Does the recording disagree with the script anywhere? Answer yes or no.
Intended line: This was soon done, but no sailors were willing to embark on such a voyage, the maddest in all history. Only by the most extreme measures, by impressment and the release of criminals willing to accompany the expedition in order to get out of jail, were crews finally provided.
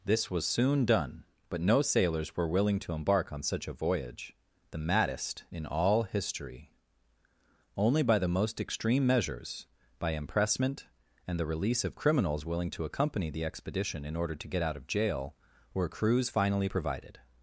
no